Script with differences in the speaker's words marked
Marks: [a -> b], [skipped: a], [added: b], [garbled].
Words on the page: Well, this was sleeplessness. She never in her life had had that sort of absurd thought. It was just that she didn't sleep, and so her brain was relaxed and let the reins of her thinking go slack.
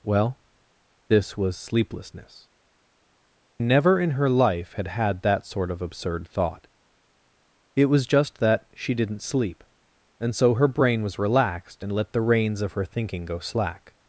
Well, this was sleeplessness. [skipped: She] never in her life had had that sort of absurd thought. It was just that she didn't sleep, and so her brain was relaxed and let the reins of her thinking go slack.